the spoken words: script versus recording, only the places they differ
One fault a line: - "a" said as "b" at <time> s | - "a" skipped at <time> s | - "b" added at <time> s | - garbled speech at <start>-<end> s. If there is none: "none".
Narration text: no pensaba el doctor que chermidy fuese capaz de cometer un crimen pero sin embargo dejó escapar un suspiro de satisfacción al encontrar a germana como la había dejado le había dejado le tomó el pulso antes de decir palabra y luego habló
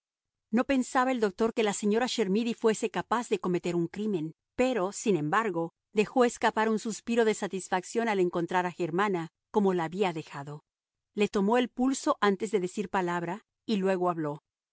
- "la señora" added at 1.6 s
- "había dejado le" skipped at 11.3 s